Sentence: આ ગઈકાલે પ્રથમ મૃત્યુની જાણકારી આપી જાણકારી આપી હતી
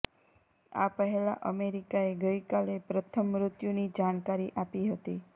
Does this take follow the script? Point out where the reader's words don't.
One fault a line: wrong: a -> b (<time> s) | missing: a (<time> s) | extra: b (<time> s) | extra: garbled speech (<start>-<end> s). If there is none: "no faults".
extra: પહેલા અમેરિકાએ (0.9 s)
missing: જાણકારી આપી (4.9 s)